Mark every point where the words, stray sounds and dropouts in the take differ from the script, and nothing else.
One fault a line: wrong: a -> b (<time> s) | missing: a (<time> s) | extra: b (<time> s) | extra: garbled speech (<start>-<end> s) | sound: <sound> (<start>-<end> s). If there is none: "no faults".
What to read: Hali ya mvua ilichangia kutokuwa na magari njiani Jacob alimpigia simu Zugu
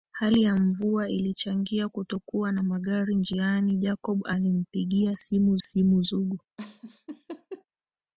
extra: simu (5.6 s)
sound: laugh (6.6-7.7 s)